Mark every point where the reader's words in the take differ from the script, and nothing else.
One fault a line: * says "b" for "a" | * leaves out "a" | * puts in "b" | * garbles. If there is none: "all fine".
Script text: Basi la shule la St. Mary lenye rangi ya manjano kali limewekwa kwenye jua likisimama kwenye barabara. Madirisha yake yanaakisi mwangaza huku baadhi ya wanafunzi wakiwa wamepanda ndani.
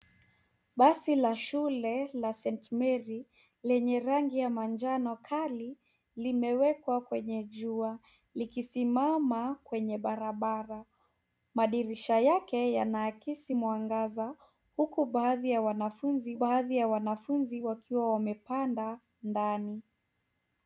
* puts in "baadhi ya wanafunzi"